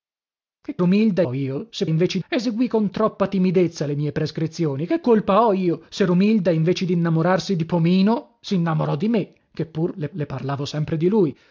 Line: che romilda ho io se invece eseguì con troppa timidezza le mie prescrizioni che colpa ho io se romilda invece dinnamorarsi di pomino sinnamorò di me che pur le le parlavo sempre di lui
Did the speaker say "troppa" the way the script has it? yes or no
yes